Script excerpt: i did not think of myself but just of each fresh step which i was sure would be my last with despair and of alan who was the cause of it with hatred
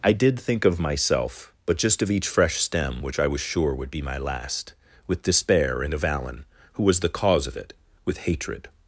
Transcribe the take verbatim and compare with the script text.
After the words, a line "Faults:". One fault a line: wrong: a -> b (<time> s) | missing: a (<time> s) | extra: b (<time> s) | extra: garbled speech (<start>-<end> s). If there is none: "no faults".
i did think of myself but just of each fresh stem which i was sure would be my last with despair and of alan who was the cause of it with hatred
Faults:
missing: not (0.4 s)
wrong: step -> stem (2.6 s)